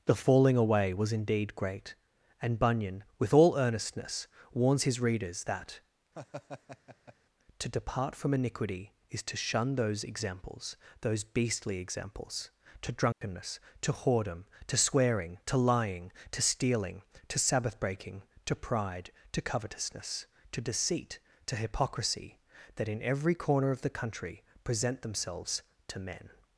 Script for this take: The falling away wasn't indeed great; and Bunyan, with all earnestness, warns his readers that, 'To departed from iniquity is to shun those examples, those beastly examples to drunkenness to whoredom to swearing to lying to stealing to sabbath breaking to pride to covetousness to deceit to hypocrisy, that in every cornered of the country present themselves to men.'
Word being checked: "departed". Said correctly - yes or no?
no